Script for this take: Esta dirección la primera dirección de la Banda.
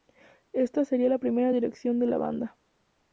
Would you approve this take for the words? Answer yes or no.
no